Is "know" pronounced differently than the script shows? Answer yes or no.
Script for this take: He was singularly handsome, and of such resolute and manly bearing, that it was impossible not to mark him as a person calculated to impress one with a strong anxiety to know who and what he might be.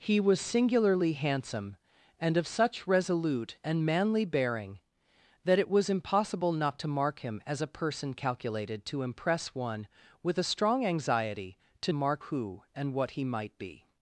yes